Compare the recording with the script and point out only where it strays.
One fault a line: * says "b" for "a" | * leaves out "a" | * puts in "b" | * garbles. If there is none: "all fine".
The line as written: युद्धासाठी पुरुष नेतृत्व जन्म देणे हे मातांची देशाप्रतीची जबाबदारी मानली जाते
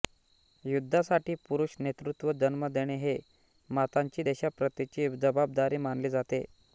all fine